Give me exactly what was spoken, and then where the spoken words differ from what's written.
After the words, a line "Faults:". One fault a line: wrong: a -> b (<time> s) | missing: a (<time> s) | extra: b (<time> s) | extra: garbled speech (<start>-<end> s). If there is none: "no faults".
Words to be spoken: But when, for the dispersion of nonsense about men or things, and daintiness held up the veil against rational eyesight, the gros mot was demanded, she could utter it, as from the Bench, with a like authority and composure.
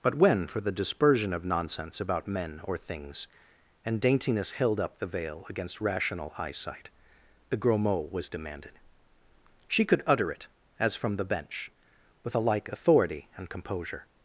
But when, for the dispersion of nonsense about men or things, and daintiness held up the veil against rational eyesight, the gros mot was demanded, she could utter it, as from the Bench, with a like authority and composure.
Faults:
no faults